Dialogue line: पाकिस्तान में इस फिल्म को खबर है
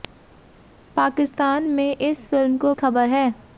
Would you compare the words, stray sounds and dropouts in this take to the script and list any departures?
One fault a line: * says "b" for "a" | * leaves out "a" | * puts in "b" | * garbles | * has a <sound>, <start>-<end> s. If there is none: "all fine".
all fine